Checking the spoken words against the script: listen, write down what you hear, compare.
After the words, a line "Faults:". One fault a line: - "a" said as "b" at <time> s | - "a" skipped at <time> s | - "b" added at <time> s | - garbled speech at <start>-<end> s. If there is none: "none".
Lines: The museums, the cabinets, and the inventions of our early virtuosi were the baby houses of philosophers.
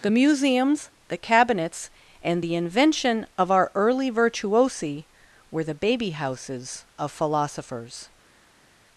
The museums, the cabinets, and the invention of our early virtuosi were the baby houses of philosophers.
Faults:
- "inventions" said as "invention" at 2.5 s